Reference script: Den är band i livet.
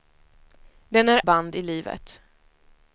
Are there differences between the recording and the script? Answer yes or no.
no